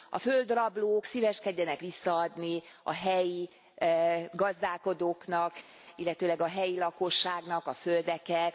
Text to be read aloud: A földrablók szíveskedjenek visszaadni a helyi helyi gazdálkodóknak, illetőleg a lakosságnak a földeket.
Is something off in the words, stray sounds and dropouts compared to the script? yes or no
yes